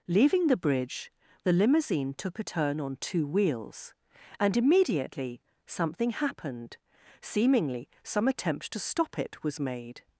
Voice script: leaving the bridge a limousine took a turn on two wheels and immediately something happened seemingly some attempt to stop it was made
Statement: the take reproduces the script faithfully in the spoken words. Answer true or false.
false